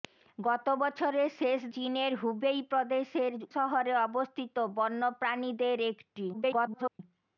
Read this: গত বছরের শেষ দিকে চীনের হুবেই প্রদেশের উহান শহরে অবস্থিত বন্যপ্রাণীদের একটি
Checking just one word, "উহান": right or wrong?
wrong